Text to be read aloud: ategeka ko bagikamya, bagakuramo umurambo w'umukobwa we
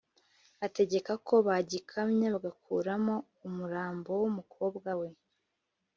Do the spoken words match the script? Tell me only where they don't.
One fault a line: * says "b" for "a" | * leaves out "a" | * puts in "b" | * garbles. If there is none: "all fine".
all fine